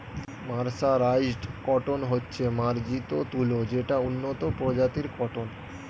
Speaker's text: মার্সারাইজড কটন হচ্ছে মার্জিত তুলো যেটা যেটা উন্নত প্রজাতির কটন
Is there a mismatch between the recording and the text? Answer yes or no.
yes